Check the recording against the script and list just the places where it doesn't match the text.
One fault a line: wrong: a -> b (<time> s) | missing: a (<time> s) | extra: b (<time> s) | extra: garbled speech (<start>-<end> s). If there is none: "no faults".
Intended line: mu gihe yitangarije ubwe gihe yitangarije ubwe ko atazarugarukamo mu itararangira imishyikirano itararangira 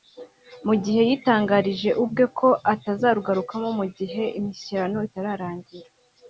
missing: gihe yitangarije ubwe (2.2 s)
wrong: itararangira -> gihe (4.0 s)